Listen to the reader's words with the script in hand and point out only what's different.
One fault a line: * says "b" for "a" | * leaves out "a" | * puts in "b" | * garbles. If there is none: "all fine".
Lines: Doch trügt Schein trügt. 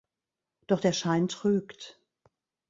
* says "der" for "trügt"